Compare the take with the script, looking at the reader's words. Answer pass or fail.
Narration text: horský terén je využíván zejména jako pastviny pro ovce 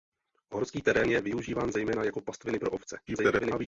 fail